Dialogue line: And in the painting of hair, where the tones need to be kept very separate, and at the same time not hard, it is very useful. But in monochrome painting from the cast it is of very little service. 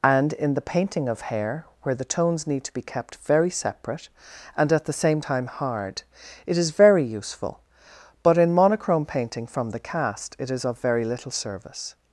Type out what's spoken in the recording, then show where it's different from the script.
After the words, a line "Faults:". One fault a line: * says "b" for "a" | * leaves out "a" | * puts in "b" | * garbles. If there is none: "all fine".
And in the painting of hair, where the tones need to be kept very separate, and at the same time hard, it is very useful. But in monochrome painting from the cast it is of very little service.
Faults:
* leaves out "not"